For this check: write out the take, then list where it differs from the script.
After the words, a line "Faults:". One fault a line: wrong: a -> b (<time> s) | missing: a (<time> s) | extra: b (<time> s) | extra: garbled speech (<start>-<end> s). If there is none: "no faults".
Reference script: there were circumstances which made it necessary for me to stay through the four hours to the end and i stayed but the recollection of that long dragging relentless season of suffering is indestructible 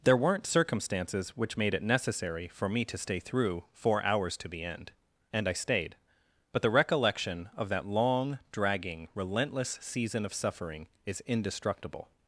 there weren't circumstances which made it necessary for me to stay through four hours to the end and i stayed but the recollection of that long dragging relentless season of suffering is indestructible
Faults:
wrong: were -> weren't (0.2 s)
missing: the (3.6 s)